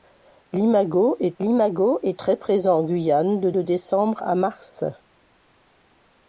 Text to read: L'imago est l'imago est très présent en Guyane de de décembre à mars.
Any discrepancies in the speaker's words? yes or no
no